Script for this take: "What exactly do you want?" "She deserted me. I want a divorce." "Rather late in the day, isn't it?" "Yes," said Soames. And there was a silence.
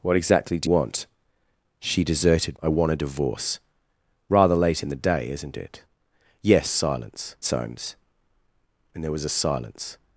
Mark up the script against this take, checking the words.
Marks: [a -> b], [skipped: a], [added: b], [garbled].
"What exactly do [skipped: you] want?" "She deserted [skipped: me.] I want a divorce." "Rather late in the day, isn't it?" "Yes," [said -> silence] Soames. And there was a silence.